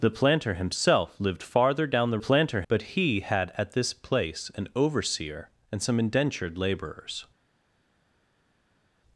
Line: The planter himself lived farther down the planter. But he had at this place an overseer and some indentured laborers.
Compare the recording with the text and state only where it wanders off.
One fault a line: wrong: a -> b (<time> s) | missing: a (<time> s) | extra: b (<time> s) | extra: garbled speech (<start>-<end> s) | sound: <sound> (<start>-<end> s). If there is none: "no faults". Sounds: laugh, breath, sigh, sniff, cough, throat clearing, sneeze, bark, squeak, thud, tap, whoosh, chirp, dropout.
no faults